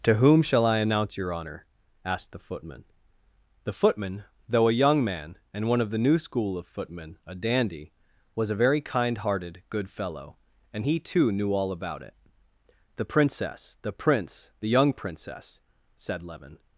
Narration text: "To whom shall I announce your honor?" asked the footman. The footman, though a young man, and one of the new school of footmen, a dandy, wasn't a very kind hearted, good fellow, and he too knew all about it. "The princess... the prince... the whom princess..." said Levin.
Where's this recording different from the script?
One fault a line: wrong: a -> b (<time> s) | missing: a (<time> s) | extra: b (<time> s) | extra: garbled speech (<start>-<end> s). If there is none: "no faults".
wrong: wasn't -> was (8.3 s)
wrong: whom -> young (14.7 s)